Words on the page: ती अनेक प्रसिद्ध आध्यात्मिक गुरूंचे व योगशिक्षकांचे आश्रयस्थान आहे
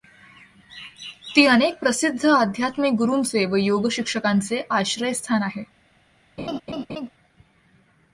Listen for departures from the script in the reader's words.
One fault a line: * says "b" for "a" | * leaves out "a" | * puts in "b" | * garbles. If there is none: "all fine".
all fine